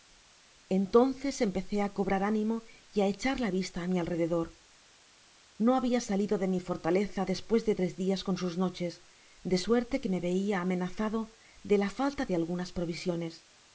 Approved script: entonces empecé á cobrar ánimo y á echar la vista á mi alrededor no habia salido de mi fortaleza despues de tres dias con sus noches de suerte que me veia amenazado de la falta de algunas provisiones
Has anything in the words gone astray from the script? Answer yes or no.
no